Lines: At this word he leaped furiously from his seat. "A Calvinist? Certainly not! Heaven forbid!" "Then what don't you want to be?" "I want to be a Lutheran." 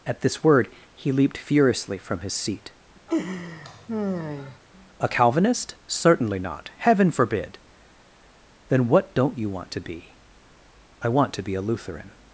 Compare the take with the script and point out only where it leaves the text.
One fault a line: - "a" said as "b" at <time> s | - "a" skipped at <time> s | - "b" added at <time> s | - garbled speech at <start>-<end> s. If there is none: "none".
none